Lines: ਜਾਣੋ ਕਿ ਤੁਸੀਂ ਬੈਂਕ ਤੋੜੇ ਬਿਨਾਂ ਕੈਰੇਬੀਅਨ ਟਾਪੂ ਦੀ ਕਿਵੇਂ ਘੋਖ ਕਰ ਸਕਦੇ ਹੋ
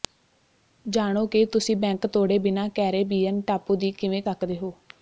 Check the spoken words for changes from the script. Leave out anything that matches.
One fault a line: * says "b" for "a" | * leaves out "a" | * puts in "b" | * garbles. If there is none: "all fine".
* leaves out "ਘੋਖ ਕਰ"